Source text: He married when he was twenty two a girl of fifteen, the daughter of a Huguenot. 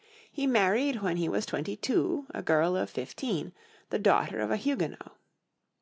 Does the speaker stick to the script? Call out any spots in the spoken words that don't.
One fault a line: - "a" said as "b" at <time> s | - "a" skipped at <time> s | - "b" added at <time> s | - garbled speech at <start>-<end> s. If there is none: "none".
none